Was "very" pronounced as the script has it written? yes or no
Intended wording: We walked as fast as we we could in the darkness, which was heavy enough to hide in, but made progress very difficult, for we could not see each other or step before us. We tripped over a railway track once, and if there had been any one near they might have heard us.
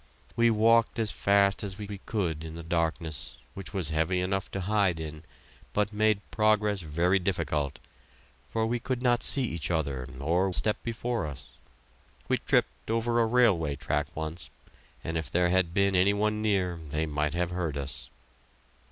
yes